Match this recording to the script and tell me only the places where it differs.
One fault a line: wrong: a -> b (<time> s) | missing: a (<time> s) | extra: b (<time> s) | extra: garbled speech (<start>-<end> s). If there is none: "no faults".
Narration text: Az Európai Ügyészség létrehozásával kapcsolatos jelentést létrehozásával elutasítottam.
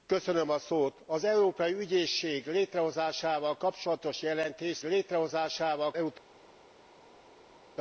no faults